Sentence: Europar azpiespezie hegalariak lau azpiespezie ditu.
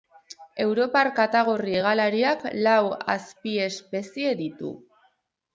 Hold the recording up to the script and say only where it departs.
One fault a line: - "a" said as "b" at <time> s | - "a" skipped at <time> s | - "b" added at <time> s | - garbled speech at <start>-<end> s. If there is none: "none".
- "azpiespezie" said as "katagorri" at 1.2 s